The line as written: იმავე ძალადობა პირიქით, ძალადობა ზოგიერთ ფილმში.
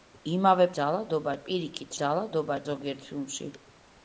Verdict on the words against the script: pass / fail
pass